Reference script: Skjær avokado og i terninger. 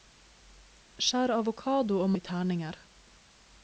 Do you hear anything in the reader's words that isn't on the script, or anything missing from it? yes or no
no